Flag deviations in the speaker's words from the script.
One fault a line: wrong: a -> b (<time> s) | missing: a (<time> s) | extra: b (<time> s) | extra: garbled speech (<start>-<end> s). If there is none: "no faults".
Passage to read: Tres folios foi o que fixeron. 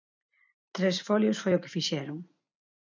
no faults